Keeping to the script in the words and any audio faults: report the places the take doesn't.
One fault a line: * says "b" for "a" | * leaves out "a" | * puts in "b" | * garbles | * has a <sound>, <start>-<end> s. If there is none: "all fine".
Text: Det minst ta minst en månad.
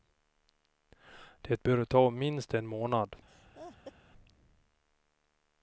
* says "bör" for "minst"
* has a laugh, 3.3-3.9 s